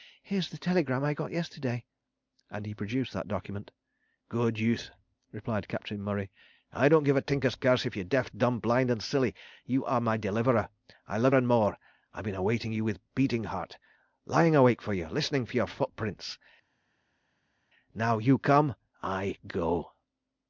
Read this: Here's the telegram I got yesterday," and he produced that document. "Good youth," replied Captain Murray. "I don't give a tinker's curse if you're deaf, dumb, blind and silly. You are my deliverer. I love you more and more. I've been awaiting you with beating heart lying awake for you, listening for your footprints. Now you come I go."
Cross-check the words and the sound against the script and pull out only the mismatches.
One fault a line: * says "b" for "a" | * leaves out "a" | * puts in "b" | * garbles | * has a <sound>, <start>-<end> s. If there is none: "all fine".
* leaves out "you more"